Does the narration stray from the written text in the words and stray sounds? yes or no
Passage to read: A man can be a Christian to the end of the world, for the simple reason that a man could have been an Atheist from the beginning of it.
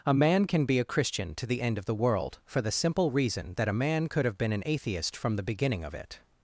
no